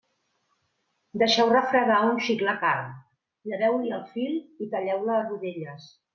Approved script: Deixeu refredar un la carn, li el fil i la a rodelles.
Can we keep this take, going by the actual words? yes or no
no